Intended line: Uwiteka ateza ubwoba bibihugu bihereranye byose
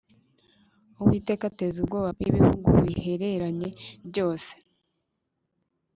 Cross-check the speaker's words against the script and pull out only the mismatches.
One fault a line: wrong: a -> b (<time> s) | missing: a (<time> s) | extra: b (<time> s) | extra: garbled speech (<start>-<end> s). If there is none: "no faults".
no faults